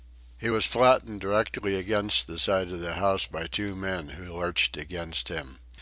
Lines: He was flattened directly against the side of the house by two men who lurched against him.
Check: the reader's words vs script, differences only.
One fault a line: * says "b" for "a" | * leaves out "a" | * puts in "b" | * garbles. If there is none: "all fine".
all fine